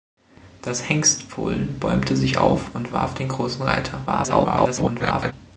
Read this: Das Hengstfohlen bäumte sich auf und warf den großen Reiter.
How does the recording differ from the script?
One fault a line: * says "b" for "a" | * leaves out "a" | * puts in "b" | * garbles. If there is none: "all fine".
* garbles